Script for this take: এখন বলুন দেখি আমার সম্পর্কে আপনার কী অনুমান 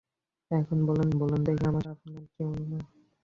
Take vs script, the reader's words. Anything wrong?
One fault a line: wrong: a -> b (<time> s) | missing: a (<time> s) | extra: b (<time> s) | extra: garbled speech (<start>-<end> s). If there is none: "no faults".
extra: বলুন (1.2 s)
missing: সম্পর্কে (1.8 s)